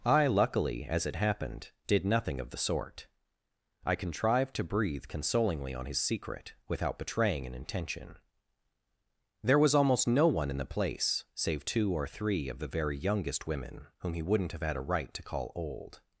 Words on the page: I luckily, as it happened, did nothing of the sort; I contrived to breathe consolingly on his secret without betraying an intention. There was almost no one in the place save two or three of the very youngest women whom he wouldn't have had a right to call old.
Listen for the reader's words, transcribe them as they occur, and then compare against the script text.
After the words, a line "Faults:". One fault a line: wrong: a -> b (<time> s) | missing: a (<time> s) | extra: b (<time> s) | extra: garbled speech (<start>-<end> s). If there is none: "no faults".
I luckily, as it happened, did nothing of the sort; I contrived to breathe consolingly on his secret without betraying an intention. There was almost no one in the place save two or three of the very youngest women whom he wouldn't have had a right to call old.
Faults:
no faults